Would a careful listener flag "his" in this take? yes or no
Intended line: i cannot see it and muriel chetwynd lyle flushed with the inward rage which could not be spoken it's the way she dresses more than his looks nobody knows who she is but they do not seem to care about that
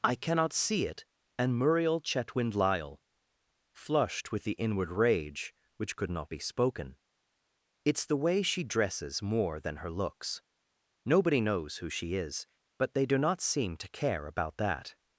yes